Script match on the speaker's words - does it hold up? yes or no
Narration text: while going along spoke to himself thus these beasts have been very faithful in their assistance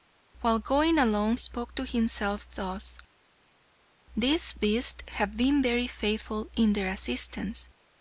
yes